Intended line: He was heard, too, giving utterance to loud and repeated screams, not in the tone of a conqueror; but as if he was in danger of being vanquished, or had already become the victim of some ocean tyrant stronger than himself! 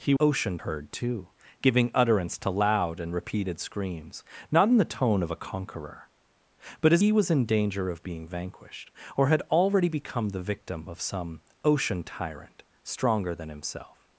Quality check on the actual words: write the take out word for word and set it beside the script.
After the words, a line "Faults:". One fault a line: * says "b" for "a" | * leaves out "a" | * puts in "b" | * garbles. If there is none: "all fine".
He ocean heard, too, giving utterance to loud and repeated screams, not in the tone of a conqueror; but as he was in danger of being vanquished, or had already become the victim of some ocean tyrant stronger than himself!
Faults:
* says "ocean" for "was"
* leaves out "if"